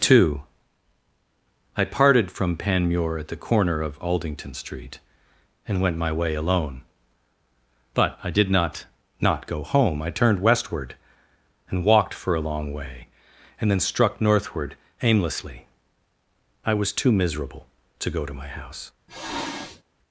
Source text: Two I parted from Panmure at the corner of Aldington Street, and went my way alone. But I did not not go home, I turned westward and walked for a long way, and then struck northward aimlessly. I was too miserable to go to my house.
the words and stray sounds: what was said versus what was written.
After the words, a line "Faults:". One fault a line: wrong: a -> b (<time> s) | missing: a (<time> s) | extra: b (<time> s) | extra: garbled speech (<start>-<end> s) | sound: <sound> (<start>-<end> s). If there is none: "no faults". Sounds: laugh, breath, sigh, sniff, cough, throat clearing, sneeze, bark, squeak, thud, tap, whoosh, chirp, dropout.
Two I parted from Panmure at the corner of Aldington Street, and went my way alone. But I did not not go home, I turned westward and walked for a long way, and then struck northward aimlessly. I was too miserable to go to my house.
Faults:
sound: sniff (19.1-19.8 s)